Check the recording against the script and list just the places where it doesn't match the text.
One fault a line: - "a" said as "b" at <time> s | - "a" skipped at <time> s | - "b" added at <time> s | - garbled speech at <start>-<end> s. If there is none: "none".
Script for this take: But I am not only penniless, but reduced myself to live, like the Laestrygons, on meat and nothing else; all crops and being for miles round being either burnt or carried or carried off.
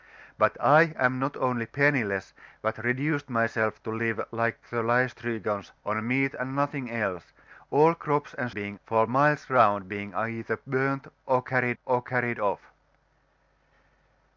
none